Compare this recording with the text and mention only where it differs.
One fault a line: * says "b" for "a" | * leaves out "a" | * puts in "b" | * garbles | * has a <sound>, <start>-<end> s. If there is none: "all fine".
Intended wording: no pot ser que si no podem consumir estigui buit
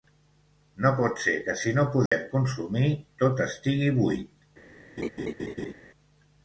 * has a dropout, 2.1-2.1 s
* puts in "tot"
* has a laugh, 5.0-5.7 s